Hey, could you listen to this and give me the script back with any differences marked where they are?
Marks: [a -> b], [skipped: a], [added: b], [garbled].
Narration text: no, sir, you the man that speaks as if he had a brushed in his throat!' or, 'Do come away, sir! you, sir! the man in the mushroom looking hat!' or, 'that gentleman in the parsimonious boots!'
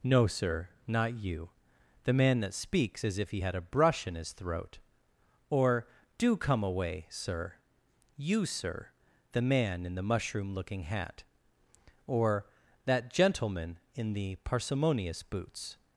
no, sir, [added: not] you the man that speaks as if he had a [brushed -> brush] in his throat!' or, 'Do come away, sir! you, sir! the man in the mushroom looking hat!' or, 'that gentleman in the parsimonious boots!'